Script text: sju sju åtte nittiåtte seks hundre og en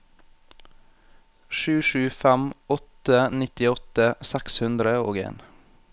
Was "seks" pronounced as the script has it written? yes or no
yes